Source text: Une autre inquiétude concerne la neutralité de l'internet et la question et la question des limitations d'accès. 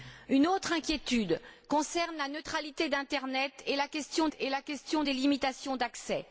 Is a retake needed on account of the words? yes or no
no